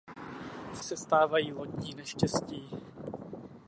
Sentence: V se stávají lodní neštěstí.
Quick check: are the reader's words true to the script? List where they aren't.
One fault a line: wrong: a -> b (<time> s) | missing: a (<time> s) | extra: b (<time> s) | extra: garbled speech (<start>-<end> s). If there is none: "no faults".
no faults